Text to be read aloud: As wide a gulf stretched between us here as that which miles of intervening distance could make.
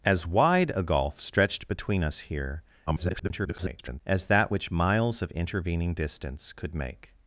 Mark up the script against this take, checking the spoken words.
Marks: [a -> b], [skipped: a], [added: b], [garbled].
As wide a gulf stretched between us here [garbled] as that which miles of intervening distance could make.